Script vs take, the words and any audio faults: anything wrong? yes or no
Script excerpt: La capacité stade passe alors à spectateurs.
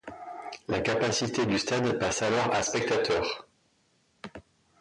yes